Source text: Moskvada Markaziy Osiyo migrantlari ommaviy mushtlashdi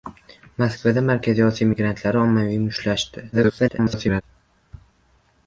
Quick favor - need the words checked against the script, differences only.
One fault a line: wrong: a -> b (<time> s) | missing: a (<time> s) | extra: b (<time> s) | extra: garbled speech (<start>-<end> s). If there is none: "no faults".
extra: garbled speech (3.3-4.2 s)